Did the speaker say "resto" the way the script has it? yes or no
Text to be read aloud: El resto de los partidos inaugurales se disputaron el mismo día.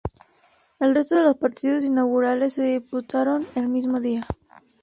yes